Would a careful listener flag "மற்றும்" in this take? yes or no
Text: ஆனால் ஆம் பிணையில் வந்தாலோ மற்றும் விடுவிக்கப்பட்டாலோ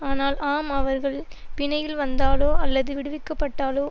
yes